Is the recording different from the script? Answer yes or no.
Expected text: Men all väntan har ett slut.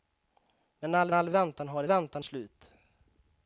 yes